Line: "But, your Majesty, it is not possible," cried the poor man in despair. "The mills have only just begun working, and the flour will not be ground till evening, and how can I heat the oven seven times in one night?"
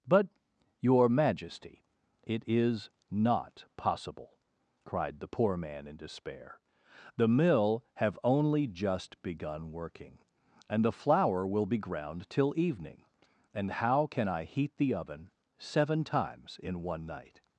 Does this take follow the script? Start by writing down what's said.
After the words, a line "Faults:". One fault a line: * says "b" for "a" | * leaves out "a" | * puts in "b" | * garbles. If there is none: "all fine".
"But, your Majesty, it is not possible," cried the poor man in despair. "The mill have only just begun working, and the flour will be ground till evening, and how can I heat the oven seven times in one night?"
Faults:
* says "mill" for "mills"
* leaves out "not"